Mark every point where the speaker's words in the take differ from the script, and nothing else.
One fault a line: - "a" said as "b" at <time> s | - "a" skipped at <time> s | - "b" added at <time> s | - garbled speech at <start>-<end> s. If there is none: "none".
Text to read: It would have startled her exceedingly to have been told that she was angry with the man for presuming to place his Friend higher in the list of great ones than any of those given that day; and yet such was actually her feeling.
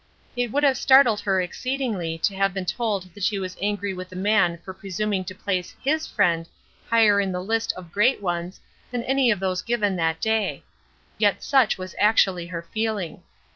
- "and" skipped at 10.6 s